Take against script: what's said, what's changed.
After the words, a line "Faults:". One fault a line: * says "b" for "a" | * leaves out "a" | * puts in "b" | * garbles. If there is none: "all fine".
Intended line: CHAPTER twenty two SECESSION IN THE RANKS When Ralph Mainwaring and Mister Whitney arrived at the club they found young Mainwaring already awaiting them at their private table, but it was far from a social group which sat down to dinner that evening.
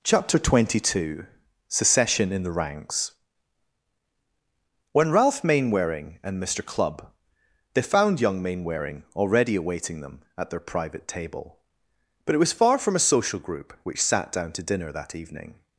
CHAPTER twenty two SECESSION IN THE RANKS When Ralph Mainwaring and Mister club they found young Mainwaring already awaiting them at their private table, but it was far from a social group which sat down to dinner that evening.
Faults:
* leaves out "Whitney arrived at the"